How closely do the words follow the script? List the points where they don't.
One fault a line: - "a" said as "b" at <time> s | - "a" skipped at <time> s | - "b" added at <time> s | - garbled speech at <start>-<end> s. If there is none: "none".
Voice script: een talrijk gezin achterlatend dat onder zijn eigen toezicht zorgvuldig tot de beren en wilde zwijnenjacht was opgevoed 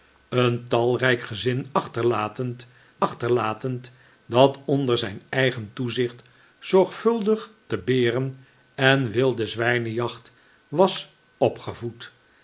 - "achterlatend" added at 3.0 s
- "tot" skipped at 7.5 s